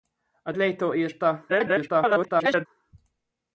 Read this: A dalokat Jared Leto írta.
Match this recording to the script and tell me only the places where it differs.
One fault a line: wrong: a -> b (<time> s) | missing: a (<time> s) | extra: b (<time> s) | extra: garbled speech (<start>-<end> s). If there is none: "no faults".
missing: dalokat Jared (0.5 s)
extra: garbled speech (1.5-2.7 s)